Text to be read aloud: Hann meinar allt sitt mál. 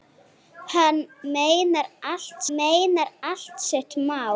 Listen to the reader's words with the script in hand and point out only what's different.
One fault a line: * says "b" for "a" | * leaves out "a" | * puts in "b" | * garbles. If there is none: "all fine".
* puts in "meinar allt"